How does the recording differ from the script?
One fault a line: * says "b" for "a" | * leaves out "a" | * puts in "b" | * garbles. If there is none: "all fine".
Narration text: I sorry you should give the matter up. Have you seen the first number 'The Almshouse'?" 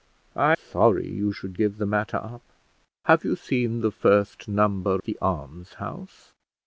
all fine